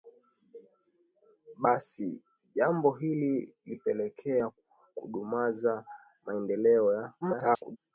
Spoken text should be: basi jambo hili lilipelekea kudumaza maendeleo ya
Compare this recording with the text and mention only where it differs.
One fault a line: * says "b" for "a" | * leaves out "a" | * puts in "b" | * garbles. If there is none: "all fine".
* garbles